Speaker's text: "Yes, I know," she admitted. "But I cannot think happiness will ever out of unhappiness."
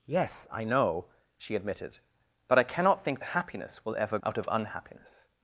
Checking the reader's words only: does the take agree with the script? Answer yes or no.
yes